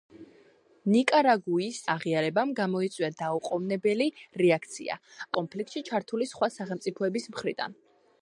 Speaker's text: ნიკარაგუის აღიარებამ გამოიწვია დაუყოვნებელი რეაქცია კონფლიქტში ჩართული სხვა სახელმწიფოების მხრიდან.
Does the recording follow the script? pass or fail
pass